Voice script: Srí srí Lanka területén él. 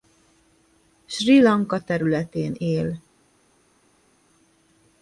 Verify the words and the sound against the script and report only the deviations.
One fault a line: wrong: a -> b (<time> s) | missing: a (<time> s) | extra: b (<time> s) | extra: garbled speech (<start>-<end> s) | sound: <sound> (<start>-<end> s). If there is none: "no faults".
missing: srí (1.4 s)